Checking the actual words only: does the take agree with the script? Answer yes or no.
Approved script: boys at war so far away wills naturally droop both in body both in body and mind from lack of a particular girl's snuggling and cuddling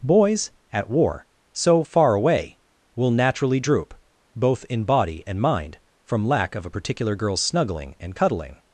no